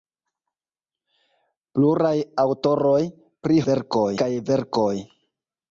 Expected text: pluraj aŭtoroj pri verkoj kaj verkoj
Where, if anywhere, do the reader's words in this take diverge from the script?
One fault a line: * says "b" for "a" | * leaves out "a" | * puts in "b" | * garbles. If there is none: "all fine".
all fine